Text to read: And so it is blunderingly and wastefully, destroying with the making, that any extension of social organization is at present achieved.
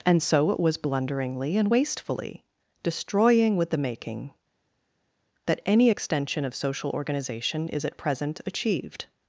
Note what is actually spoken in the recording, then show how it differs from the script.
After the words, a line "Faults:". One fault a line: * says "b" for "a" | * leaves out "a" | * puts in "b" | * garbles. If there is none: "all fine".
And so it was blunderingly and wastefully, destroying with the making, that any extension of social organization is at present achieved.
Faults:
* says "was" for "is"